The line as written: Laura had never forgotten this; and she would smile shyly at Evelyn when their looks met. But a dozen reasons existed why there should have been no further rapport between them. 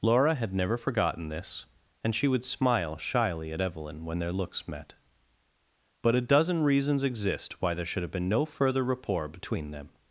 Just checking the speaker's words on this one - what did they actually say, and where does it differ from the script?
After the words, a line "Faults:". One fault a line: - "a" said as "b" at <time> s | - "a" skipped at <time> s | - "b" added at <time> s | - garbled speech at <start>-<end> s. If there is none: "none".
Laura had never forgotten this; and she would smile shyly at Evelyn when their looks met. But a dozen reasons exist why there should have been no further rapport between them.
Faults:
- "existed" said as "exist" at 7.0 s